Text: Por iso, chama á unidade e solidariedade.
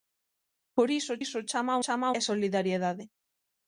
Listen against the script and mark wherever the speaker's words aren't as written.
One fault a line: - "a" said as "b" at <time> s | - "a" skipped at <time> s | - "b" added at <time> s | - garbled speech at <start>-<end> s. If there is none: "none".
- "iso" added at 1.2 s
- "unidade" said as "chama" at 1.8 s